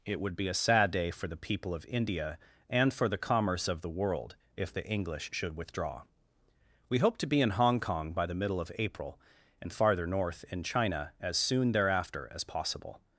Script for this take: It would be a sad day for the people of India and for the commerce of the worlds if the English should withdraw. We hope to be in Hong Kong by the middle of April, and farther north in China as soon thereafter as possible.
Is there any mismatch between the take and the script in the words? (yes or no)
yes